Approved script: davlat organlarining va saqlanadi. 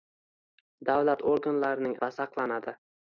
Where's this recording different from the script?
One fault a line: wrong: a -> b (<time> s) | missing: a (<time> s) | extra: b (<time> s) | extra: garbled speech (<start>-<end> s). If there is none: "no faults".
no faults